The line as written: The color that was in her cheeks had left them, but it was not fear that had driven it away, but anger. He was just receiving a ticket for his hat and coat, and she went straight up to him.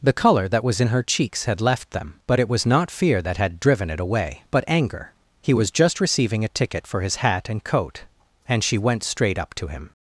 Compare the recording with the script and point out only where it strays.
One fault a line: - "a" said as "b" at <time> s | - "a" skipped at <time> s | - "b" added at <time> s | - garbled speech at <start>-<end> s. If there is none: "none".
none